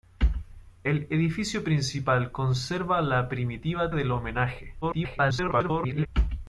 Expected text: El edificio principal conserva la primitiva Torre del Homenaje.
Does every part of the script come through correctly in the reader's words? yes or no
no